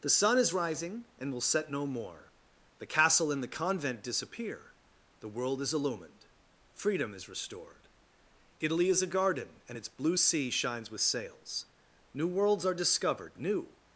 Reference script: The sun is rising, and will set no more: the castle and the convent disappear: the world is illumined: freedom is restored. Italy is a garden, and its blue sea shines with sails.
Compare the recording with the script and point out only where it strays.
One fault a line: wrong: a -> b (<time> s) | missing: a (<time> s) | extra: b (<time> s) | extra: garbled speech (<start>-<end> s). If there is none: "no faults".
extra: New worlds are discovered new (12.1 s)